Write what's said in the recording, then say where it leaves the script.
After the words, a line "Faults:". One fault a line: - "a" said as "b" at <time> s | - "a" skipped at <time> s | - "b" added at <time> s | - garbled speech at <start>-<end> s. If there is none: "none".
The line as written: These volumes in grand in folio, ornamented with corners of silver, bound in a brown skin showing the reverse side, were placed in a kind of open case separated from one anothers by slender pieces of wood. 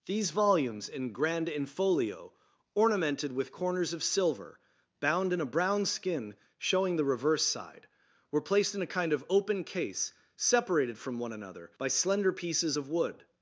These volumes in grand in folio, ornamented with corners of silver, bound in a brown skin showing the reverse side, were placed in a kind of open case separated from one another by slender pieces of wood.
Faults:
- "anothers" said as "another" at 11.3 s